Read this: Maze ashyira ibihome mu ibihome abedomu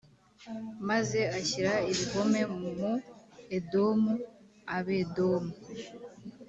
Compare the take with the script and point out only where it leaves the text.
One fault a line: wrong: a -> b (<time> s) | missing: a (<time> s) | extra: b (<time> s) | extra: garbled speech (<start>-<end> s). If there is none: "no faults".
wrong: ibihome -> edomu (3.6 s)